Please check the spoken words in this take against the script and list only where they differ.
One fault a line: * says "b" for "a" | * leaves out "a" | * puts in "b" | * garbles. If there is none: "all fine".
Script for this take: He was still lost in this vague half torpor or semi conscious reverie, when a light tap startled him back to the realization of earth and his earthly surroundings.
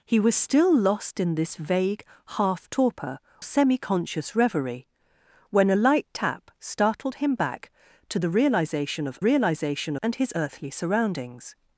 * leaves out "or"
* says "realization" for "earth"